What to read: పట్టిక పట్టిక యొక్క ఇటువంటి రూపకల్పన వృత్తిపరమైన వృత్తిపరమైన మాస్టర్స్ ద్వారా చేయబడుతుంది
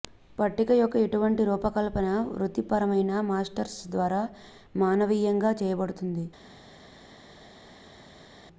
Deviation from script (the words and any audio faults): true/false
true